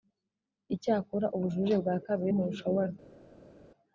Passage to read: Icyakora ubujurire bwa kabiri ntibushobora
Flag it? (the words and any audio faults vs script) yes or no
no